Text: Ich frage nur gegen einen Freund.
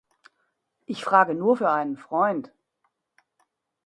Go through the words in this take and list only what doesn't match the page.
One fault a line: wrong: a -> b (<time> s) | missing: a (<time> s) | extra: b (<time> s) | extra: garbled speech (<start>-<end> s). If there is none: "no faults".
wrong: gegen -> für (1.5 s)